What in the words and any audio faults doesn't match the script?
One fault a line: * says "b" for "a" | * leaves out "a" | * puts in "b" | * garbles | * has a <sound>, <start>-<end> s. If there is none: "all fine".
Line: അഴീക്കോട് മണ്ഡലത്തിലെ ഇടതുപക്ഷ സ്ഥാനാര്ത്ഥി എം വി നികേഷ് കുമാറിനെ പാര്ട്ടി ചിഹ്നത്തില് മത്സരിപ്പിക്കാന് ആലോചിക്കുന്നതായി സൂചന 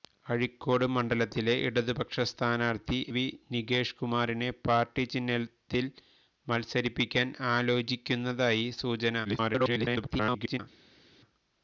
* leaves out "എം"
* garbles